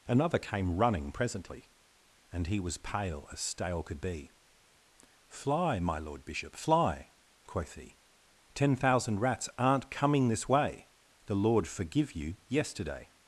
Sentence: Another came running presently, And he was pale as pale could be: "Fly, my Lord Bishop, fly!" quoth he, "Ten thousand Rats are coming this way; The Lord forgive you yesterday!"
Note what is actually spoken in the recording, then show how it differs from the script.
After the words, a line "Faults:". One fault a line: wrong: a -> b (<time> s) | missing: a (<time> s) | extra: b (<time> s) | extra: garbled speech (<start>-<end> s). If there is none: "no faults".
Another came running presently, And he was pale as stale could be: "Fly, my Lord Bishop, fly!" quoth he, "Ten thousand Rats aren't coming this way; The Lord forgive you yesterday!"
Faults:
wrong: pale -> stale (3.4 s)
wrong: are -> aren't (9.6 s)